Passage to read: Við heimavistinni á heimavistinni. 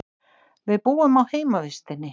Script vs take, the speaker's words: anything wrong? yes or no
yes